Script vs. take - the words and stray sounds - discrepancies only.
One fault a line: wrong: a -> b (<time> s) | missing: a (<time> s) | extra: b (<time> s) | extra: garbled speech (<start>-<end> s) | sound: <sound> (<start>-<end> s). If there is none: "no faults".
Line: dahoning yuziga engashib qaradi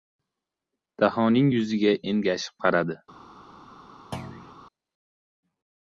sound: thud (4.1-4.6 s)